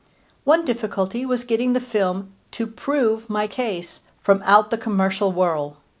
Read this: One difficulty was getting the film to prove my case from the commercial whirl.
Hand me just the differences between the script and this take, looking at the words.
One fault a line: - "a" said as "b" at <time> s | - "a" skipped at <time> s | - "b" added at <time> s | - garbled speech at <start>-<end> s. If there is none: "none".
- "out" added at 4.4 s